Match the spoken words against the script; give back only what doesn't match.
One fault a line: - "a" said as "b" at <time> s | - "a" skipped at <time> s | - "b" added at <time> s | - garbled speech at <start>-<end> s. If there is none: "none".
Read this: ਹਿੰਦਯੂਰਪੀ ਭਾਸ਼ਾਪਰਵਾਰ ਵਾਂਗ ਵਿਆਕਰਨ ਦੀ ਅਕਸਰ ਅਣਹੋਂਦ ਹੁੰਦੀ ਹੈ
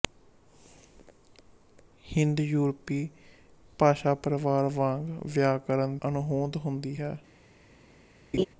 - "ਦੀ ਅਕਸਰ" skipped at 6.0 s